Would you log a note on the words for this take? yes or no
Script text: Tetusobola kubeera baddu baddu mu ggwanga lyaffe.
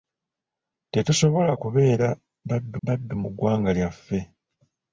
no